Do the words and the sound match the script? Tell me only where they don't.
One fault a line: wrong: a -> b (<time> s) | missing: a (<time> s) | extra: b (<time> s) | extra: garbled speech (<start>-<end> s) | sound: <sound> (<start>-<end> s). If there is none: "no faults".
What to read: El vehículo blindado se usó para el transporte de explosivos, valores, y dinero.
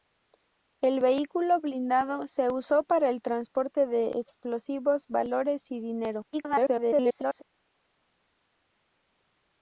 extra: garbled speech (6.3-7.4 s)